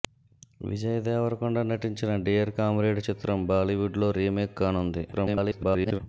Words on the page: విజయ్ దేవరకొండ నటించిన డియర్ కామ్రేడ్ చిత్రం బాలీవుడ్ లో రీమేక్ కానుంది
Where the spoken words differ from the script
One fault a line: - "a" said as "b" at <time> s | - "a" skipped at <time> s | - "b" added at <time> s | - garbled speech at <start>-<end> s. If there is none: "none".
- garbled speech at 5.1-6.0 s